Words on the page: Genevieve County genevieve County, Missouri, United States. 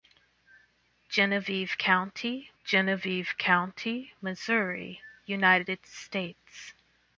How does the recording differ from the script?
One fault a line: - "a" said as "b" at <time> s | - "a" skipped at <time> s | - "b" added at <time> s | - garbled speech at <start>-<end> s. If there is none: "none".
none